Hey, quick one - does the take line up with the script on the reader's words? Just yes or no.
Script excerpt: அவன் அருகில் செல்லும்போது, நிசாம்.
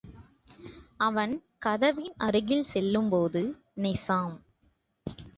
no